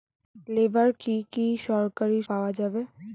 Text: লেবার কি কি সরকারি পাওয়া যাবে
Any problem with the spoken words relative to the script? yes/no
no